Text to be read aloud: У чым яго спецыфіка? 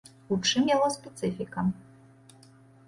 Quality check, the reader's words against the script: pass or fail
pass